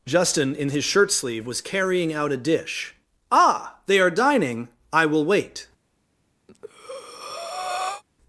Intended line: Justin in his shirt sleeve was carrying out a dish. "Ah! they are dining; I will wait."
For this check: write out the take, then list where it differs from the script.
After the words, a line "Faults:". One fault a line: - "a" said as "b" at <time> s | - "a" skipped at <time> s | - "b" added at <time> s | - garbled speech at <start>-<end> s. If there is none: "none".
Justin in his shirt sleeve was carrying out a dish. "Ah! they are dining; I will wait."
Faults:
none